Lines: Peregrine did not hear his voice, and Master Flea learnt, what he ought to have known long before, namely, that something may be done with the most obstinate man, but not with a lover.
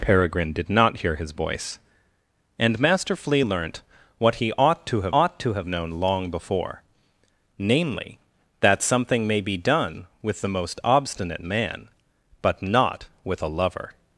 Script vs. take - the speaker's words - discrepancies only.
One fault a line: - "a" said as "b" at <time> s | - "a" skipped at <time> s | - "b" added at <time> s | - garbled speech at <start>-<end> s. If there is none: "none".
- "ought to have" added at 5.1 s